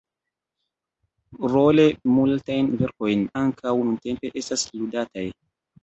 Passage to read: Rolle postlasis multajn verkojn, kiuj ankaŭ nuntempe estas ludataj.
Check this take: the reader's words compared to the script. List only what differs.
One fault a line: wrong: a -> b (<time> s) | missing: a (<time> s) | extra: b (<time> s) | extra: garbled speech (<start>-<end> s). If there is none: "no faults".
missing: postlasis (1.9 s)
missing: kiuj (3.3 s)